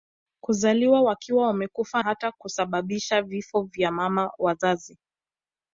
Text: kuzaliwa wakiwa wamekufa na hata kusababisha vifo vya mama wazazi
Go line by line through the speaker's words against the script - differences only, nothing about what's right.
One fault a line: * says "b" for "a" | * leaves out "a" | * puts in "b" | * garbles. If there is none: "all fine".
* leaves out "na"